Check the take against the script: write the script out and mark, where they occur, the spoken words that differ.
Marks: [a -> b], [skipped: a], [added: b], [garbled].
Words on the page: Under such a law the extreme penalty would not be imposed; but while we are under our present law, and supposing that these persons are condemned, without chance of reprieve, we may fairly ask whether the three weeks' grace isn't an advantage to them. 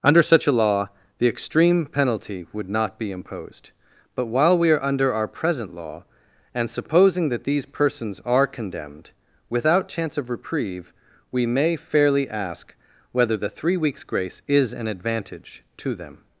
Under such a law the extreme penalty would not be imposed; but while we are under our present law, and supposing that these persons are condemned, without chance of reprieve, we may fairly ask whether the three weeks' grace [isn't -> is] an advantage to them.